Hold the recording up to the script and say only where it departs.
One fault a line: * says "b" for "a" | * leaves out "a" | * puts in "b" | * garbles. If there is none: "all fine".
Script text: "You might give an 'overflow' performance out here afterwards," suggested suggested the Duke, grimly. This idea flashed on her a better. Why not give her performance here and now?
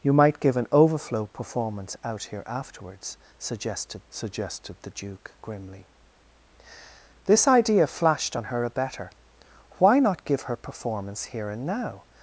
all fine